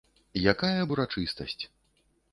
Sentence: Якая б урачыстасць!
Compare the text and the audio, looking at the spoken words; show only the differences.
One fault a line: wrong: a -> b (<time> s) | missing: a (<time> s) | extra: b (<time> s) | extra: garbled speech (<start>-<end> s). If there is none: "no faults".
no faults